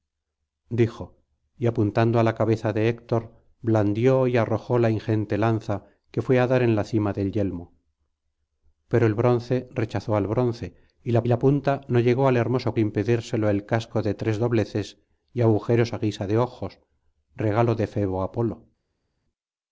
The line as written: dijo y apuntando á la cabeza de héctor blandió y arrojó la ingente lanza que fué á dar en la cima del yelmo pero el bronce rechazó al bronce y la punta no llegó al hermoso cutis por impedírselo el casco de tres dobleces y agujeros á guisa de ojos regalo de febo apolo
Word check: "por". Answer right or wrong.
wrong